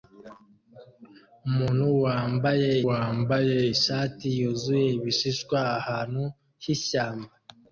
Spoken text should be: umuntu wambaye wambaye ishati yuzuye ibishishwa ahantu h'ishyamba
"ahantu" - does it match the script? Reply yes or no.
yes